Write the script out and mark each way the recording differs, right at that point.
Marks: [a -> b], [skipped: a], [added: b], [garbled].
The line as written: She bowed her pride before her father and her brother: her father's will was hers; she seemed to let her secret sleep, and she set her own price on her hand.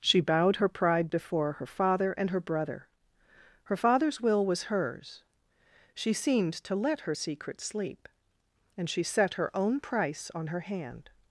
She bowed her pride before her father and her brother: her father's will was hers; she seemed to let her secret sleep, and she set her own price on her hand.